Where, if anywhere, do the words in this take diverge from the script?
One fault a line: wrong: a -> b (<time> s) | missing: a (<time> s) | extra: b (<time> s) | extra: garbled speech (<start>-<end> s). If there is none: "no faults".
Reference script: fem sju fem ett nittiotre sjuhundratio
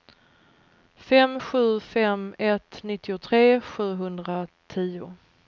no faults